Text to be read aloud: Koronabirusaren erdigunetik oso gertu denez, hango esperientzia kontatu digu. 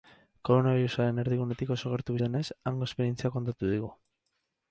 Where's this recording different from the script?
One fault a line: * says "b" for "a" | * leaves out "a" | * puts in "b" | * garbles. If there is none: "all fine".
all fine